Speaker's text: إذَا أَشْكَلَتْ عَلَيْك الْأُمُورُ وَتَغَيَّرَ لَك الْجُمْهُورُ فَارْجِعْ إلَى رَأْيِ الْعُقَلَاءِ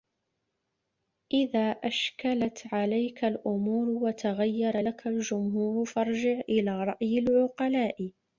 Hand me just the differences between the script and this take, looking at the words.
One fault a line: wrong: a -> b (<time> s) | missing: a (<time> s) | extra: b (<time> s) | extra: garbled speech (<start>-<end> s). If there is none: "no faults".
no faults